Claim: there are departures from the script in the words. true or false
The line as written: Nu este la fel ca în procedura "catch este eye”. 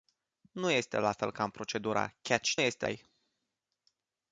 false